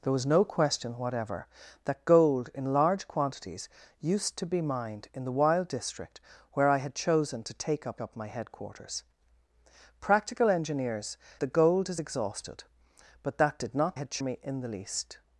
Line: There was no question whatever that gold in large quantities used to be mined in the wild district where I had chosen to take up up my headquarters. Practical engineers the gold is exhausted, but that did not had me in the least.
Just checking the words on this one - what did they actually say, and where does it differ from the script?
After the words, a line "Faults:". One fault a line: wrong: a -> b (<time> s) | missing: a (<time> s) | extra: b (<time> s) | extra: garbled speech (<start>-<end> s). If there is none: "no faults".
There was no question whatever that gold in large quantities used to be mined in the wild district where I had chosen to take up up my headquarters. Practical engineers the gold is exhausted, but that did not had me in the least.
Faults:
no faults